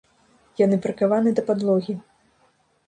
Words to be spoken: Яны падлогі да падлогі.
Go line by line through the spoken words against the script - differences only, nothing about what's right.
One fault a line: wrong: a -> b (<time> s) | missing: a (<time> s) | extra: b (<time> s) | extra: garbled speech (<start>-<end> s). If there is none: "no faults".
wrong: падлогі -> прыкаваны (0.8 s)